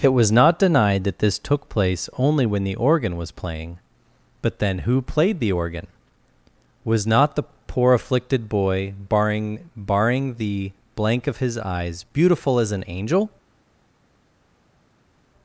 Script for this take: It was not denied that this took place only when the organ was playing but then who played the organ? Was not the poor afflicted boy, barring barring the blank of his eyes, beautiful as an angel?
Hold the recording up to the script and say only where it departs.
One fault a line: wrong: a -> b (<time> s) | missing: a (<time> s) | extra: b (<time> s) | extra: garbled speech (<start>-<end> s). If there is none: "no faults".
no faults